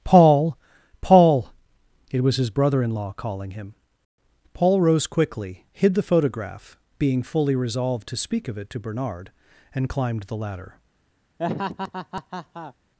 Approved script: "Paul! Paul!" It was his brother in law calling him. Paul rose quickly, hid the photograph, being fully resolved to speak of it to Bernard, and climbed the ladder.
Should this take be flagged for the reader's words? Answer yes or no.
no